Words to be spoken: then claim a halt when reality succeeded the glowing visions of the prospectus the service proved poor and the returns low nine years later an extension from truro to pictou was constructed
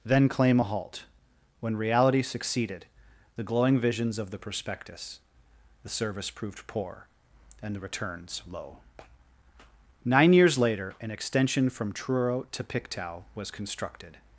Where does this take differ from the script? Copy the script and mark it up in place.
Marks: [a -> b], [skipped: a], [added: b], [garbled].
then claim a halt when reality succeeded the glowing visions of the prospectus the service proved poor and the returns low nine years later an extension from truro to pictou was constructed